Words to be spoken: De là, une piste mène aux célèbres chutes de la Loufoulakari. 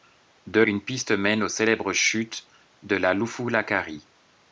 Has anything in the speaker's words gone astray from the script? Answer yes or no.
yes